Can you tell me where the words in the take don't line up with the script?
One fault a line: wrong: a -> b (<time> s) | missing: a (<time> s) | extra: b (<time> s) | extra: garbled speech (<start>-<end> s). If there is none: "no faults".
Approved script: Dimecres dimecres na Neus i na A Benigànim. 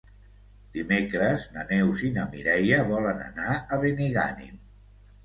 missing: dimecres (1.4 s)
extra: Mireia volen anar (2.3 s)